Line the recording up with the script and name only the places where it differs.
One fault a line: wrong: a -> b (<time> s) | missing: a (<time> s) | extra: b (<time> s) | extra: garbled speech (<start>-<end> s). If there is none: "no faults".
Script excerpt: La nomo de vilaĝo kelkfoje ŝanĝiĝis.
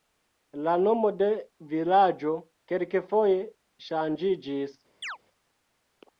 no faults